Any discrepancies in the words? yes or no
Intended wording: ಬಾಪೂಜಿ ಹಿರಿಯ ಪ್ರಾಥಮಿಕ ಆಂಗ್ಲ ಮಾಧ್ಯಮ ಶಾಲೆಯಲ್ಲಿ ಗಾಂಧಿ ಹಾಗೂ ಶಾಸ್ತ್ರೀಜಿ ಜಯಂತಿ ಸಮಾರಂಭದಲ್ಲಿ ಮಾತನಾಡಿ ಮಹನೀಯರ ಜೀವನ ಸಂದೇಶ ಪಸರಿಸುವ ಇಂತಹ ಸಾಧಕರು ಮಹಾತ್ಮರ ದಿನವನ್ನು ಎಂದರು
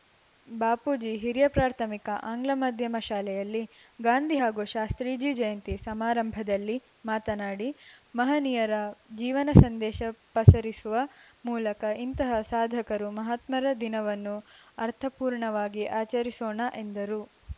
yes